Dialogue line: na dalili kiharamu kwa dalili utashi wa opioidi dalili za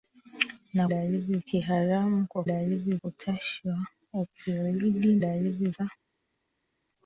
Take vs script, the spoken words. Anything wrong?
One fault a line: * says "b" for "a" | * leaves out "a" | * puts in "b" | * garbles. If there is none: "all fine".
all fine